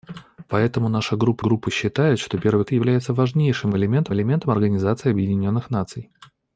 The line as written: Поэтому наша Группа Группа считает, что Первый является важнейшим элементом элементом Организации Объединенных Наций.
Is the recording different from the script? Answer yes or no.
no